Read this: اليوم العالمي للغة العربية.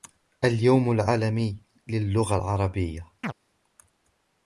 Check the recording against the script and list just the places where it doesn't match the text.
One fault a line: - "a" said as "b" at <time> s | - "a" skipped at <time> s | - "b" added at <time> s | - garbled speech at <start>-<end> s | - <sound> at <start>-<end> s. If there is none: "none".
- chirp at 3.2-3.3 s